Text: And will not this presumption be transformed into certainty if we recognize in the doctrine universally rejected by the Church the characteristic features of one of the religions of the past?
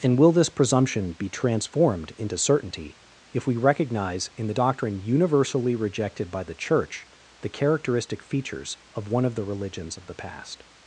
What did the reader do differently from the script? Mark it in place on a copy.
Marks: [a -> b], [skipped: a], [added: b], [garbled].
And will [skipped: not] this presumption be transformed into certainty if we recognize in the doctrine universally rejected by the Church the characteristic features of one of the religions of the past?